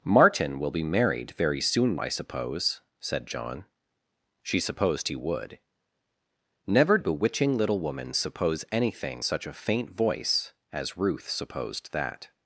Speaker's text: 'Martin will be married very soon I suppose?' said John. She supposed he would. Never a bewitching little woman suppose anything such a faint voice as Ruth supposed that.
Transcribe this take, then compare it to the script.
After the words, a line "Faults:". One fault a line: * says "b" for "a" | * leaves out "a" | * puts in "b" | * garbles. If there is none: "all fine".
'Martin will be married very soon I suppose?' said John. She supposed he would. Never a bewitching little woman suppose anything such a faint voice as Ruth supposed that.
Faults:
all fine